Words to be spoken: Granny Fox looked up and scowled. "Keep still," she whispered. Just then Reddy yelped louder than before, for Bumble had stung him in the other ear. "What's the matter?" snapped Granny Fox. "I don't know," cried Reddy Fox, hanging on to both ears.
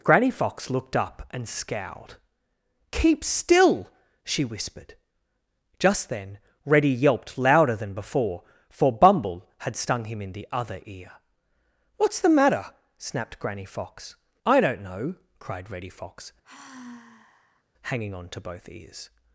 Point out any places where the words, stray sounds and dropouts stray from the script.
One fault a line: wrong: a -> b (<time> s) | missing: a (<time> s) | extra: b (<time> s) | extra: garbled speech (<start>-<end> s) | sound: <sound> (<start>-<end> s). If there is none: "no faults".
sound: sigh (16.4-17.6 s)